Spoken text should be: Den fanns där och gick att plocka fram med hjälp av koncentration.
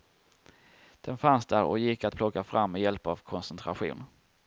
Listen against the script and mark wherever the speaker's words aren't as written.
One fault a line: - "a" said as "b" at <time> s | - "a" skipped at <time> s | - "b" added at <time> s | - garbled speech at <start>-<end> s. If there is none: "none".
none